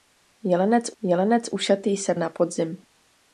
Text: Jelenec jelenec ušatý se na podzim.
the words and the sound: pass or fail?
pass